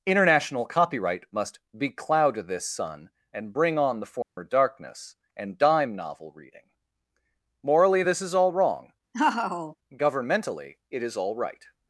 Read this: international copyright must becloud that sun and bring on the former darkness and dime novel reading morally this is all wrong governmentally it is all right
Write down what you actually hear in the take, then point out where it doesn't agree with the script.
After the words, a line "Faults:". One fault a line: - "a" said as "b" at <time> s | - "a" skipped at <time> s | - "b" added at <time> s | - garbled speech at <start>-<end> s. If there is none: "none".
international copyright must becloud this sun and bring on the former darkness and dime novel reading morally this is all wrong governmentally it is all right
Faults:
- "that" said as "this" at 2.5 s